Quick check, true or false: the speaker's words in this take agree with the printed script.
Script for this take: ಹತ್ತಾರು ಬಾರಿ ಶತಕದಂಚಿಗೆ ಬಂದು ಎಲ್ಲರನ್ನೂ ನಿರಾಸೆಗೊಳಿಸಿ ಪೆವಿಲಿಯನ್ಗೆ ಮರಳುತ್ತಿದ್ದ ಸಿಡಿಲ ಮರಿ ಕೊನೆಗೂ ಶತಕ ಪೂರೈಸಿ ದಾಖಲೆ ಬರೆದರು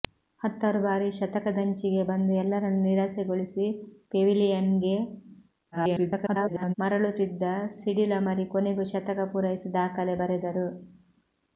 false